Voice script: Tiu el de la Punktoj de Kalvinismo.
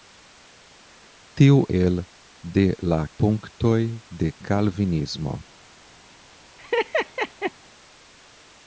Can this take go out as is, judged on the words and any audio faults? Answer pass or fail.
fail